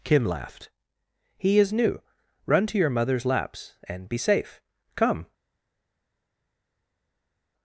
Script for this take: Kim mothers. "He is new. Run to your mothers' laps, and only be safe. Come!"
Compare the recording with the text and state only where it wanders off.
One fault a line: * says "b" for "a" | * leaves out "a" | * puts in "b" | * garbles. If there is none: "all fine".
* says "laughed" for "mothers"
* leaves out "only"